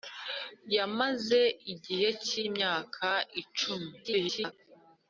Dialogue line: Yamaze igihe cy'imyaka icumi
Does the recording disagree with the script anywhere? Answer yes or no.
yes